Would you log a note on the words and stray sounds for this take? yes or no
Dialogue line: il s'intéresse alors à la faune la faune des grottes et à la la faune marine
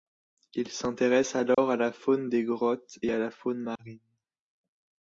yes